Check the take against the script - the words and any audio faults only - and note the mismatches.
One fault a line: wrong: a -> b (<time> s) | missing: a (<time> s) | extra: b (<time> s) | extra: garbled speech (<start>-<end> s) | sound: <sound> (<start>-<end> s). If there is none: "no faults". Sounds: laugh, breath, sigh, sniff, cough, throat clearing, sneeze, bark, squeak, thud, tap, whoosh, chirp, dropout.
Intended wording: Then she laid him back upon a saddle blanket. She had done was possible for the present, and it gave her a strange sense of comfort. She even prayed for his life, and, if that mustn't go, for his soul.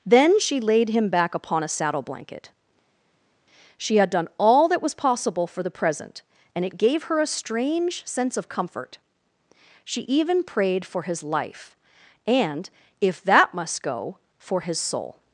extra: all that (4.4 s)
wrong: mustn't -> must (13.5 s)